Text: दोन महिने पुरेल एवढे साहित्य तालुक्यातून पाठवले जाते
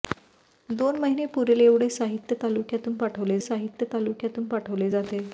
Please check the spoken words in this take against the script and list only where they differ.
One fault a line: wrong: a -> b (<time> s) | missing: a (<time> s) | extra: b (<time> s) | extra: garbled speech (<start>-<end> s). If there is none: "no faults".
extra: साहित्य तालुक्यातून पाठवले (3.4 s)